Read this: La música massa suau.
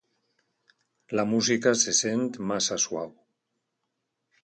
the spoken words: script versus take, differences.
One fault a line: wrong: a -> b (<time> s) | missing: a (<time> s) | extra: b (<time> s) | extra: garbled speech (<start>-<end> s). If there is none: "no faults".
extra: se sent (1.8 s)